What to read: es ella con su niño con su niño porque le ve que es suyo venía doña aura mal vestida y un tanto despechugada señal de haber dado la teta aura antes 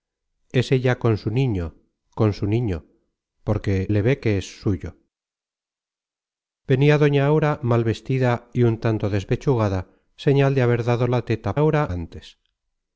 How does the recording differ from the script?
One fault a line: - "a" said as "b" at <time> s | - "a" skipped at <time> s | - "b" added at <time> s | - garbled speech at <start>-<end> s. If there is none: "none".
none